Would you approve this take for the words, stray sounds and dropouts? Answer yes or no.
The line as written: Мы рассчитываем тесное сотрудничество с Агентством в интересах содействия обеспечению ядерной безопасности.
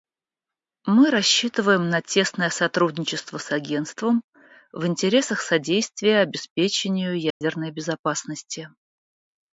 no